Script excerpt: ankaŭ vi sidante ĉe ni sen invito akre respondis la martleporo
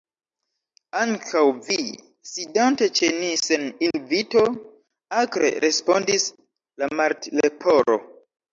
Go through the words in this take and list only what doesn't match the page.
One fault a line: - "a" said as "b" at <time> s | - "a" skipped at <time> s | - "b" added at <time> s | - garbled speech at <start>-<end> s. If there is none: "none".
none